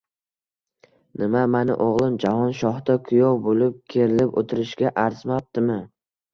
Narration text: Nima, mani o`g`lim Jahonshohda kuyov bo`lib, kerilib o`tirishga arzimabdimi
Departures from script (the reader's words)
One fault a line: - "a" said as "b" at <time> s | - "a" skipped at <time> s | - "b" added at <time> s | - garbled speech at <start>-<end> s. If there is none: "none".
none